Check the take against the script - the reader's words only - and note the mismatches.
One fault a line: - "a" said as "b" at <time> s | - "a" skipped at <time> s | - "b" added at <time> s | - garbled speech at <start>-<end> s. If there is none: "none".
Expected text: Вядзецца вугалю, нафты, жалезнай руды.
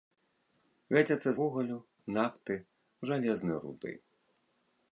none